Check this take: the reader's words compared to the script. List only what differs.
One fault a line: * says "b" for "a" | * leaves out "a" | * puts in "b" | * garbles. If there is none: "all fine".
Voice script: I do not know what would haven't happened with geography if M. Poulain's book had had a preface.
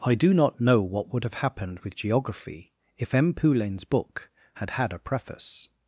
* says "have" for "haven't"